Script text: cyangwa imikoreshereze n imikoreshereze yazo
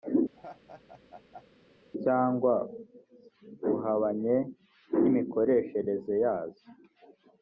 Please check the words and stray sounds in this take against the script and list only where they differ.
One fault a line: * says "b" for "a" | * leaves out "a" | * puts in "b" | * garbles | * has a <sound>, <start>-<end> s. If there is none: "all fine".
* has a laugh, 0.3-1.5 s
* says "buhabanye" for "imikoreshereze"